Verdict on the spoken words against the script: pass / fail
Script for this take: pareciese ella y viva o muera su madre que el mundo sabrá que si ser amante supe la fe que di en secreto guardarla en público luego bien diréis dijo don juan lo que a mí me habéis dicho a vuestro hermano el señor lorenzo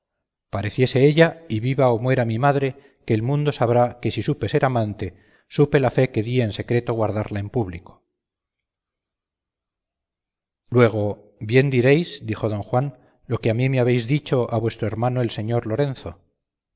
fail